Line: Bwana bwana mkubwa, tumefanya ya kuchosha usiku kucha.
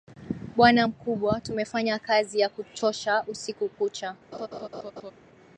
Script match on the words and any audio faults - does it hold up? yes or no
no